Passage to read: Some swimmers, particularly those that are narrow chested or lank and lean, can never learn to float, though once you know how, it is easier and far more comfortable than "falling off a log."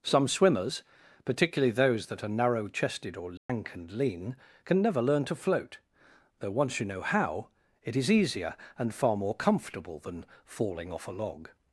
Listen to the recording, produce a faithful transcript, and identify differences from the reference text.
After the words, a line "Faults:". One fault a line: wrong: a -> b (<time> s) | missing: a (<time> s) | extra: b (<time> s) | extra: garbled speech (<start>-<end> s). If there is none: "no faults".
Some swimmers, particularly those that are narrow chested or lank and lean, can never learn to float, though once you know how, it is easier and far more comfortable than "falling off a log."
Faults:
no faults